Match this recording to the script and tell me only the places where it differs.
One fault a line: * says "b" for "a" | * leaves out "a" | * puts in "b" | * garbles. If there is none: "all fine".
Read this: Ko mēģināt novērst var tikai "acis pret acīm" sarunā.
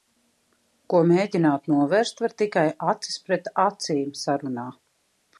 all fine